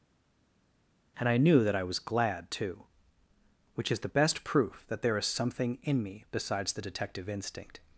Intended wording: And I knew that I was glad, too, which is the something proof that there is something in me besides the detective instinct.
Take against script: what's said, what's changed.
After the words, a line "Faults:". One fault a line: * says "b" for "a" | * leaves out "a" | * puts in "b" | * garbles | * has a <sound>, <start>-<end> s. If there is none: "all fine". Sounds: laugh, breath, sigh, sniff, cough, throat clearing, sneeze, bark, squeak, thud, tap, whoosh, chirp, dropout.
And I knew that I was glad, too, which is the best proof that there is something in me besides the detective instinct.
Faults:
* says "best" for "something"